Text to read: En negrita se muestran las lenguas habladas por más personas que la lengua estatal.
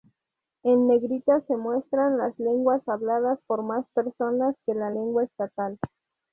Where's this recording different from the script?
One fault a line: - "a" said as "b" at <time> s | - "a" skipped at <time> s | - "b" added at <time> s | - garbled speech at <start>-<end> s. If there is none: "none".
none